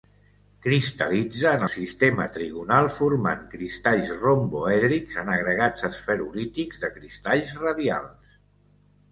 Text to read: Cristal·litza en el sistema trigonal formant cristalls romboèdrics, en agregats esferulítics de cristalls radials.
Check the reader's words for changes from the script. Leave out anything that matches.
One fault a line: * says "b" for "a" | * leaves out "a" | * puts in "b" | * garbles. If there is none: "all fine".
* leaves out "el"